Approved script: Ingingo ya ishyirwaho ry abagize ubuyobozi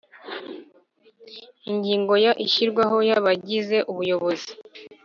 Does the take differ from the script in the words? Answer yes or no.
no